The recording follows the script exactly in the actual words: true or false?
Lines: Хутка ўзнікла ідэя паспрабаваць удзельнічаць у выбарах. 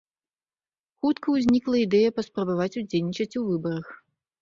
true